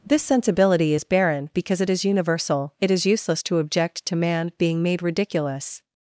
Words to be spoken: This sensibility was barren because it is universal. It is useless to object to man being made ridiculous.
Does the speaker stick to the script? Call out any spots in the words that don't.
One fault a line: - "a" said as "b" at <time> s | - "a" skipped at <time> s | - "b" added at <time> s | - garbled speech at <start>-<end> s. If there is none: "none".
- "was" said as "is" at 0.9 s